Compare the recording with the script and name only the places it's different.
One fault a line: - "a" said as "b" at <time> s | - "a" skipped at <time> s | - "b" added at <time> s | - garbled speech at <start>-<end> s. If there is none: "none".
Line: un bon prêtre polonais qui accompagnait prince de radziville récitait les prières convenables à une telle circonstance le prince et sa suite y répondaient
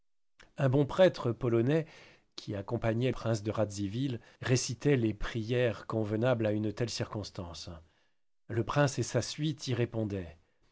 none